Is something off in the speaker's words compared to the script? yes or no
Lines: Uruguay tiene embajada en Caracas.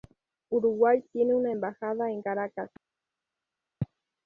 yes